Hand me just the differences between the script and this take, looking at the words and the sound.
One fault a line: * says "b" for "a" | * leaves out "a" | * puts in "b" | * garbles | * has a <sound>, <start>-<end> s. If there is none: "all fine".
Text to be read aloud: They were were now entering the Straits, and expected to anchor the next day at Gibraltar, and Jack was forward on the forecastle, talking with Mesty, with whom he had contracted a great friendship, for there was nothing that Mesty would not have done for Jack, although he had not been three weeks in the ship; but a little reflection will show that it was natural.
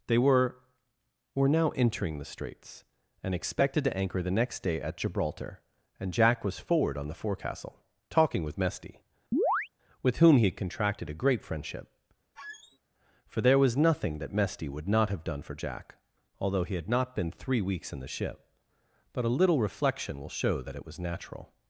* has a chirp, 9.3-9.7 s
* has a squeak, 12.4-12.8 s